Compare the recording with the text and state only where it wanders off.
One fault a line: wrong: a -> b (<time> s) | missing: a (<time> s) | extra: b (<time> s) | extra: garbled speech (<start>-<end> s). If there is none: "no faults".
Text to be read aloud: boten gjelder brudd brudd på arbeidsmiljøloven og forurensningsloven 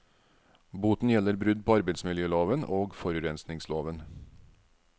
missing: brudd (1.6 s)